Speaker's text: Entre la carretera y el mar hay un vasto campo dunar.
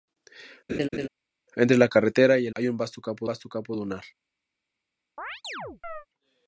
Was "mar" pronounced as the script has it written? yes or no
no